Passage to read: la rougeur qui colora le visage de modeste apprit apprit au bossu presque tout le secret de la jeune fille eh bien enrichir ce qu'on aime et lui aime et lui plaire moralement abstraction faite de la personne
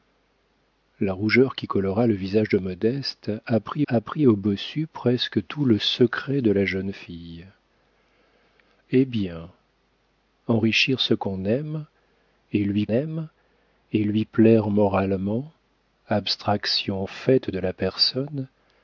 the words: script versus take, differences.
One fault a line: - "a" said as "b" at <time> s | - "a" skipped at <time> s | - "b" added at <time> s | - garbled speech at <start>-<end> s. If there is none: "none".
none